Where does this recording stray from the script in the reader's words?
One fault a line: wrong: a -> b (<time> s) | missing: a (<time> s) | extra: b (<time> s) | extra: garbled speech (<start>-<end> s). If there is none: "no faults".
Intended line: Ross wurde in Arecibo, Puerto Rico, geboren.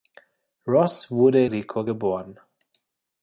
missing: in Arecibo Puerto (1.4 s)